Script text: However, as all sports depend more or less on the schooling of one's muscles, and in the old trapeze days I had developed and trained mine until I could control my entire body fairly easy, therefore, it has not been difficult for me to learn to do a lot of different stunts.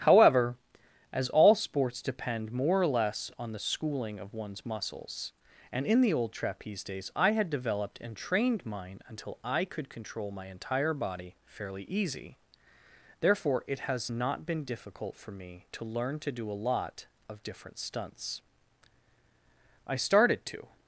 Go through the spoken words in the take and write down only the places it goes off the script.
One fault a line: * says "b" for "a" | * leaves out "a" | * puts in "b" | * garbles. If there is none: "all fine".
* puts in "I started to"